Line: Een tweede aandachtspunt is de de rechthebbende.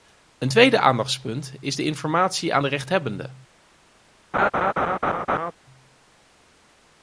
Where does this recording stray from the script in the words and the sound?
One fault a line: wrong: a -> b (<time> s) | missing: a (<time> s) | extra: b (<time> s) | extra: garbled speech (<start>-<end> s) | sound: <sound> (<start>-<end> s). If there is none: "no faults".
extra: informatie aan (1.8 s)
sound: laugh (4.3-5.5 s)